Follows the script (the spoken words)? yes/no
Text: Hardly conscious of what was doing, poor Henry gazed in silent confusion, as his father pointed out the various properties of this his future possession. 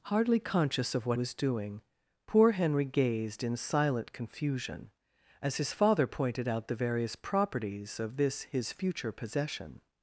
yes